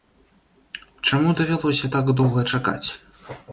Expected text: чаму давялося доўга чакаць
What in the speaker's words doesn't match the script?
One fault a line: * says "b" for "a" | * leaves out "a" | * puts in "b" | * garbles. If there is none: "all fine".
* puts in "так"